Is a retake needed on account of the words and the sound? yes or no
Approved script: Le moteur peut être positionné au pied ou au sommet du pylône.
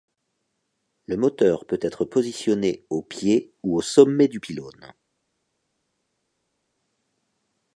no